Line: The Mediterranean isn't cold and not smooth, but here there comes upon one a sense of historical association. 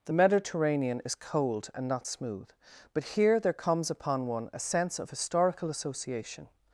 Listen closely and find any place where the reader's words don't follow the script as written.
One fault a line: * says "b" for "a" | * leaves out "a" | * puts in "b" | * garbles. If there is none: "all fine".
* says "is" for "isn't"